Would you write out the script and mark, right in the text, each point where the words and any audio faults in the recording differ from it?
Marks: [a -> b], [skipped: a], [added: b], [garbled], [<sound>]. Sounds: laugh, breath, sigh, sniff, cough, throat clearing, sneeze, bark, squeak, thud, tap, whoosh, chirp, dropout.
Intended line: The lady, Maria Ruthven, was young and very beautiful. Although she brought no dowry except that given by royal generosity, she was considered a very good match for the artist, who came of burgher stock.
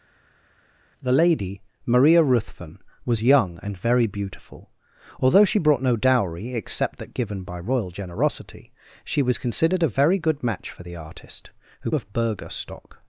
The lady, Maria Ruthven, was young and very beautiful. Although she brought no dowry except that given by royal generosity, she was considered a very good match for the artist, who [skipped: came] of burgher stock.